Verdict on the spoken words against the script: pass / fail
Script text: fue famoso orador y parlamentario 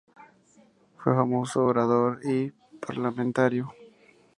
pass